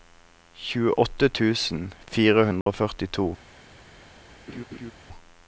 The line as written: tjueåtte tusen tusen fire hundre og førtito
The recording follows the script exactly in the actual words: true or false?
false